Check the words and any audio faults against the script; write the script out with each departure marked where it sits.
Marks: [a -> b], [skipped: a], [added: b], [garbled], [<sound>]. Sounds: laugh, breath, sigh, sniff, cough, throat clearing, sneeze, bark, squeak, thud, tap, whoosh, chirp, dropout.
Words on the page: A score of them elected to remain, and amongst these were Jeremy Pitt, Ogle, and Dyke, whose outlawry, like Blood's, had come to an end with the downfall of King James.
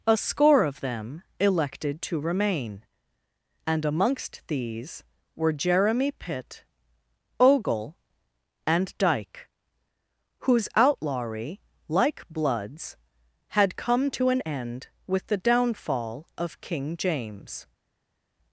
A score of them elected to remain, and amongst these were Jeremy Pitt, Ogle, and Dyke, whose outlawry, like Blood's, had come to an end with the downfall of King James.